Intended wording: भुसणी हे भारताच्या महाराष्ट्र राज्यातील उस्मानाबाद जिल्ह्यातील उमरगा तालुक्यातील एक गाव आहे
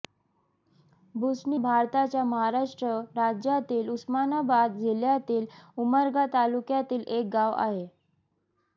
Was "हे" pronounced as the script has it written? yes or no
no